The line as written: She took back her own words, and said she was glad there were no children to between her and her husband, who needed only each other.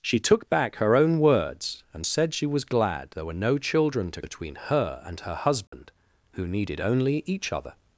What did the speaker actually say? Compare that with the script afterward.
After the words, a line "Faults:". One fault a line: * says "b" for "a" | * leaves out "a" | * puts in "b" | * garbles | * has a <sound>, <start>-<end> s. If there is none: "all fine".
She took back her own words, and said she was glad there were no children to between her and her husband, who needed only each other.
Faults:
* has a dropout, 5.7-5.7 s